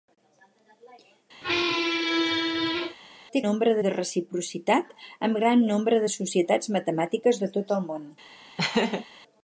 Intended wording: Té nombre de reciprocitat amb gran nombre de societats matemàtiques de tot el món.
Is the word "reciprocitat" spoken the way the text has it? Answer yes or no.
yes